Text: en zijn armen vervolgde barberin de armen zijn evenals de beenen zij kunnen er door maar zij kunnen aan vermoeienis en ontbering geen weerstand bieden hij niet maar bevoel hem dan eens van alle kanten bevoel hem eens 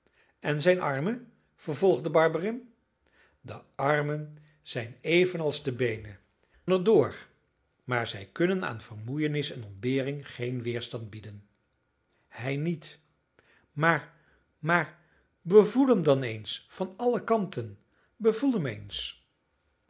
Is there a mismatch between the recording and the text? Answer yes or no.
yes